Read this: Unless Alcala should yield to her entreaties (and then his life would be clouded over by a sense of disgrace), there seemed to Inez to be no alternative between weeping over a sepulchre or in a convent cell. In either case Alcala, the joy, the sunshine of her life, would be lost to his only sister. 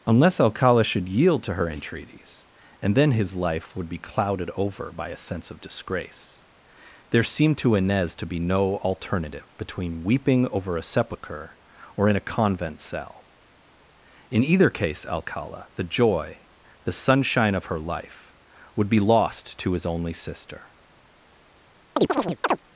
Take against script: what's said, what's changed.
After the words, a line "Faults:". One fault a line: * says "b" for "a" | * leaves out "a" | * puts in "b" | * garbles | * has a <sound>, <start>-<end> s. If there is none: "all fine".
Unless Alcala should yield to her entreaties (and then his life would be clouded over by a sense of disgrace), there seemed to Inez to be no alternative between weeping over a sepulchre or in a convent cell. In either case Alcala, the joy, the sunshine of her life, would be lost to his only sister.
Faults:
* has a chirp, 22.0-22.6 s